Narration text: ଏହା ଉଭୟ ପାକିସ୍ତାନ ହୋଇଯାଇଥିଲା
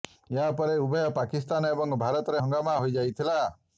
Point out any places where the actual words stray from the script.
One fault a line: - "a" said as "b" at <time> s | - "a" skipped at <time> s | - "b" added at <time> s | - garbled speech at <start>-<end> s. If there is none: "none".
- "ପରେ" added at 0.6 s
- "ଏବଂ ଭାରତରେ ହଙ୍ଗାମା" added at 1.8 s